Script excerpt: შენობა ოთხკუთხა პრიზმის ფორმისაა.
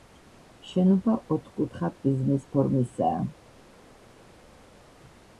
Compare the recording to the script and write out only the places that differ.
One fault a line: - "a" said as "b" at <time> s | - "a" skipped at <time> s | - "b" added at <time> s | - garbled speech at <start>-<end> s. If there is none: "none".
none